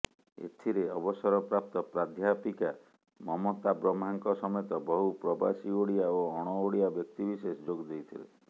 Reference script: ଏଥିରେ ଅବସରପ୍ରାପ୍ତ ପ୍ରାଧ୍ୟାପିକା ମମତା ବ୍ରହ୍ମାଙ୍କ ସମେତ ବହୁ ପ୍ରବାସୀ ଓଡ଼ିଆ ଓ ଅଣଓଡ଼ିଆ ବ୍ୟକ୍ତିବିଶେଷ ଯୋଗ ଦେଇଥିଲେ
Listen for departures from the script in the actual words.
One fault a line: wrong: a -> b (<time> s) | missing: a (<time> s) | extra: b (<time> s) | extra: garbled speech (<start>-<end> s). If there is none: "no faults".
no faults